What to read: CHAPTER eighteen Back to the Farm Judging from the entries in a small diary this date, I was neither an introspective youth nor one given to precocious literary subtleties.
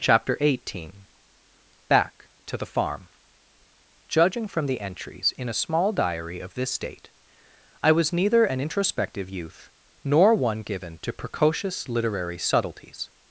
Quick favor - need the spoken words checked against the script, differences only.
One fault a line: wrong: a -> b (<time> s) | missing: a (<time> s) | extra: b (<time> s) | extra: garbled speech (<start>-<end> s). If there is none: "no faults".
extra: of (6.4 s)